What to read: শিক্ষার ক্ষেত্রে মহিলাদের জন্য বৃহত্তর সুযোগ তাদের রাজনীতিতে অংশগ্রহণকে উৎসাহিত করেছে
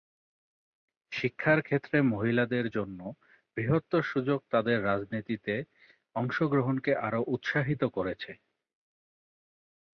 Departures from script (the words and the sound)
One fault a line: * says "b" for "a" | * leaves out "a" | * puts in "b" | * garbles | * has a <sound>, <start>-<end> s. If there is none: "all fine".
* puts in "আরও"